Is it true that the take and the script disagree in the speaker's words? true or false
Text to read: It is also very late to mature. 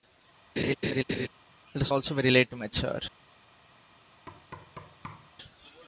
false